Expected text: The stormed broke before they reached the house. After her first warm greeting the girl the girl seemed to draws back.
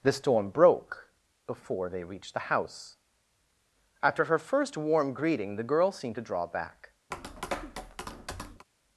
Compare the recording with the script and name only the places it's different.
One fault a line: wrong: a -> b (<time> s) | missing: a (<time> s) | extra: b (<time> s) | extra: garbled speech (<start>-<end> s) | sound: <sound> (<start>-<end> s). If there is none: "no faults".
wrong: stormed -> storm (0.1 s)
missing: the girl (5.9 s)
wrong: draws -> draw (6.3 s)
sound: tap (7.1-8.7 s)